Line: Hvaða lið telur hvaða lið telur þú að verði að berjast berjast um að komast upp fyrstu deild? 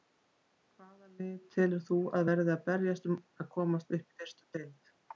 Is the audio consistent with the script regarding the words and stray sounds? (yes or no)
no